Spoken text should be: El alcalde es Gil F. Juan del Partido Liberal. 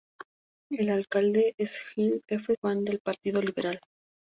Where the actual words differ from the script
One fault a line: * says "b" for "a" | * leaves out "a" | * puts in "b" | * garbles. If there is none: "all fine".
all fine